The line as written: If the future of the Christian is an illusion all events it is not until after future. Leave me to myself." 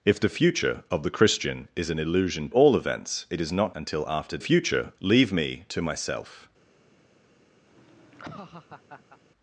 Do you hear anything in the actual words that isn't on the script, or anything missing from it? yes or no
no